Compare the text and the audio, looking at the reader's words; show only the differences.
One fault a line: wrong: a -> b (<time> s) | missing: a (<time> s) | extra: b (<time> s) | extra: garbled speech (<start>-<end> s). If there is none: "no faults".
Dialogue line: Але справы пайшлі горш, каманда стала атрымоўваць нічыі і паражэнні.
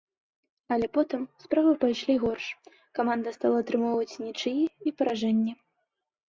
extra: потым (1.0 s)